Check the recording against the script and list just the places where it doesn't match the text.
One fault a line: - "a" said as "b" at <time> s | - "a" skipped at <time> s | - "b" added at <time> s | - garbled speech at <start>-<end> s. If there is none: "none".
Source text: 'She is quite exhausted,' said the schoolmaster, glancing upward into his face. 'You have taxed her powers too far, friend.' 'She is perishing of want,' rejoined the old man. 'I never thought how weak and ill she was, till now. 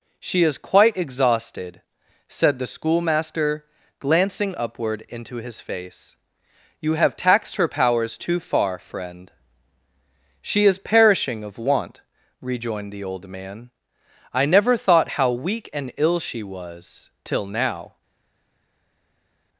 none